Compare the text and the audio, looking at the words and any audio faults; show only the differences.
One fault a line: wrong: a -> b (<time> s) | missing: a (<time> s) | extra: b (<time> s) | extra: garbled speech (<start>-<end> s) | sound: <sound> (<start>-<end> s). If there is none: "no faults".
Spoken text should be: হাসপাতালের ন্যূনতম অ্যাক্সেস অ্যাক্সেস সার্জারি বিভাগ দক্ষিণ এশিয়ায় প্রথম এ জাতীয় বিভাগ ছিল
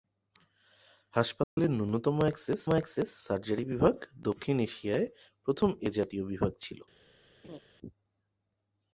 sound: dropout (1.4-1.6 s)
sound: laugh (7.4-7.6 s)